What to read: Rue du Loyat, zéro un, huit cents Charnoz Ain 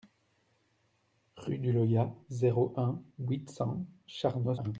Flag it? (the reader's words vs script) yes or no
no